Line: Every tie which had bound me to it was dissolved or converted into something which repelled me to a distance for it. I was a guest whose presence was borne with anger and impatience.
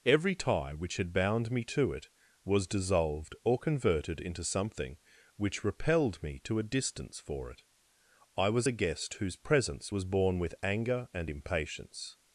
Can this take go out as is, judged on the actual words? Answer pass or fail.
pass